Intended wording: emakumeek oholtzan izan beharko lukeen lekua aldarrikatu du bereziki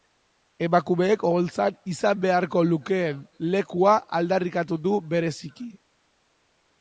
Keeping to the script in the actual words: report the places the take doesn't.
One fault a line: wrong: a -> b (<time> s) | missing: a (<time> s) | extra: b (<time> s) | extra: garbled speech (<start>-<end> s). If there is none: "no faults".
no faults